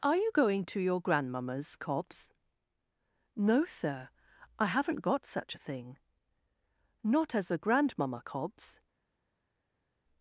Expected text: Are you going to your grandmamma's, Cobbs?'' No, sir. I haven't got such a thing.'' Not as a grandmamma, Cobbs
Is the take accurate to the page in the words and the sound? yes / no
yes